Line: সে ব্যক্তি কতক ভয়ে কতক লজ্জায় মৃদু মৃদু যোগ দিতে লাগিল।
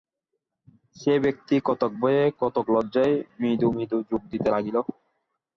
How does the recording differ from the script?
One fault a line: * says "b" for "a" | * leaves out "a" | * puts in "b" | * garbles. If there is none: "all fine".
all fine